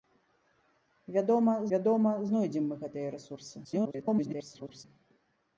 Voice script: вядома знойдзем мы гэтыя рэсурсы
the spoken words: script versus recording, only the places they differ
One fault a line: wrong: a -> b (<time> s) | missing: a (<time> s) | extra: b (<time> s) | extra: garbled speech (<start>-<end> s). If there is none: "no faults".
extra: вядома (1.7 s)
extra: garbled speech (3.6-4.8 s)